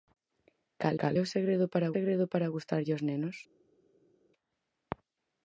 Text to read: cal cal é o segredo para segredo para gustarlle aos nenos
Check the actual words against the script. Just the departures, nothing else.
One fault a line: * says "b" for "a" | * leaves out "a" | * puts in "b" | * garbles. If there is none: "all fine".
all fine